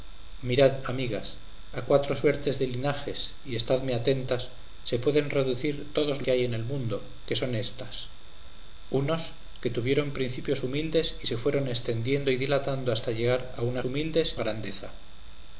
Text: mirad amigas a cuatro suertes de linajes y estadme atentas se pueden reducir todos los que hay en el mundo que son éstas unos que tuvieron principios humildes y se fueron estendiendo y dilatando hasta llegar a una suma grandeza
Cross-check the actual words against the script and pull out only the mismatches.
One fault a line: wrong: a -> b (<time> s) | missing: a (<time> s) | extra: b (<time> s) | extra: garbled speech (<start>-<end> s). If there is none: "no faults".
missing: los (6.2 s)
wrong: suma -> humildes (13.8 s)